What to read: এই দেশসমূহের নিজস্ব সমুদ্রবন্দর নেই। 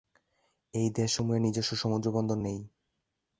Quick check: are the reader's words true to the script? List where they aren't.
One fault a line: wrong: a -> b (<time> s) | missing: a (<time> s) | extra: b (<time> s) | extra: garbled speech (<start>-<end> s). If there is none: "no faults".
no faults